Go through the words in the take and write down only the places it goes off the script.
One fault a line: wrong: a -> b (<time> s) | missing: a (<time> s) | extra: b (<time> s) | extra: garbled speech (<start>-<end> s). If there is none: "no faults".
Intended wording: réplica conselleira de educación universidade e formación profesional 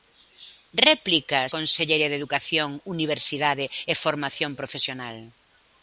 no faults